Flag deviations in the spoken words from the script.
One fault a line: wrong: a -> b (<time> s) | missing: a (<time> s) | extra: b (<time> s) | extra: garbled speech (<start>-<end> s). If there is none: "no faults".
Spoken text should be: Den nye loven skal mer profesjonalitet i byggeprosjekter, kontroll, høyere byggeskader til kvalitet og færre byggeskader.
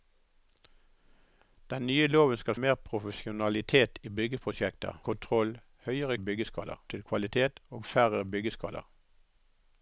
no faults